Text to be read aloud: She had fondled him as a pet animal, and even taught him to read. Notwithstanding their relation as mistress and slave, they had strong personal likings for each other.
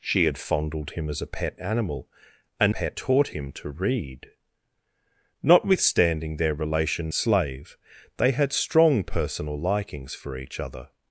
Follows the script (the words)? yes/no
no